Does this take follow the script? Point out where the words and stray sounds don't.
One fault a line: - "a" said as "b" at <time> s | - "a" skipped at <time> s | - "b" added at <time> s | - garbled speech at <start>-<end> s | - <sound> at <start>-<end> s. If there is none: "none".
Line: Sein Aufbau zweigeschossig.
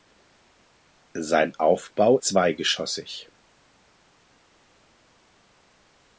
none